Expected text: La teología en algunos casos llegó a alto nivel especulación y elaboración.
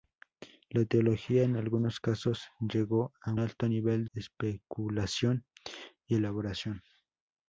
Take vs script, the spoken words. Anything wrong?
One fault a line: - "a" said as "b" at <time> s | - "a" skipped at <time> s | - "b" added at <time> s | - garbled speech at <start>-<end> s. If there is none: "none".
none